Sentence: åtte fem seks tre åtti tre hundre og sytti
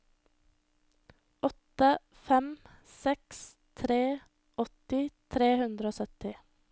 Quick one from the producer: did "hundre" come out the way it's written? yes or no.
yes